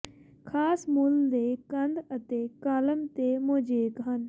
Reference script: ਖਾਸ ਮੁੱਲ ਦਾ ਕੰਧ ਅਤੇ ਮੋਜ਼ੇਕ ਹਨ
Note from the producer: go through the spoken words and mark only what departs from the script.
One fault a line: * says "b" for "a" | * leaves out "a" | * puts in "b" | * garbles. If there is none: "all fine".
* says "ਦੇ" for "ਦਾ"
* puts in "ਕਾਲਮ ਤੇ"